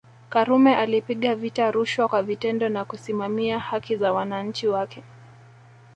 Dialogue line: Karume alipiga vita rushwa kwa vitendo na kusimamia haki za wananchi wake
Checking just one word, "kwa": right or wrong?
right